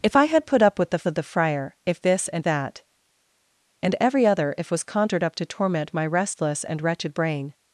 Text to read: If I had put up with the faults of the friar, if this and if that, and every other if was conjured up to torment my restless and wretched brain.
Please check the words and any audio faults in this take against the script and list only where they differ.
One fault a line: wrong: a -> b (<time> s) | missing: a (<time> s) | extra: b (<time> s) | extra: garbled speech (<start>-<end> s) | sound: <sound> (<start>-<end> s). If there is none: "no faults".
missing: faults (1.1 s)
missing: if (2.5 s)